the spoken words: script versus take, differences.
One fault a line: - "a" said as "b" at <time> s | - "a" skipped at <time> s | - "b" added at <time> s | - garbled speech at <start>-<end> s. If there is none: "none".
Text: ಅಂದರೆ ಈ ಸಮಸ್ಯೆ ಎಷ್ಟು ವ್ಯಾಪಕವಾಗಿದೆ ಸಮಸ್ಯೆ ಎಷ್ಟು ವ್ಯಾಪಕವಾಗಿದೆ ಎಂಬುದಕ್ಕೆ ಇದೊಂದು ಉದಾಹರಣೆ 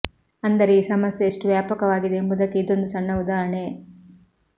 - "ಸಮಸ್ಯೆ ಎಷ್ಟು ವ್ಯಾಪಕವಾಗಿದೆ" skipped at 2.2 s
- "ಸಣ್ಣ" added at 2.9 s